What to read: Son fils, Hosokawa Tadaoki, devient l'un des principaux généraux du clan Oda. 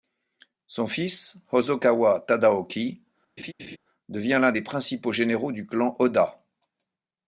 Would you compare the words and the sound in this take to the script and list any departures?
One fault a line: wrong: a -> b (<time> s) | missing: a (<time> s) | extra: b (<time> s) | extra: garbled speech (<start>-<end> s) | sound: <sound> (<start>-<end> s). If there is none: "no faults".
sound: laugh (3.4-3.8 s)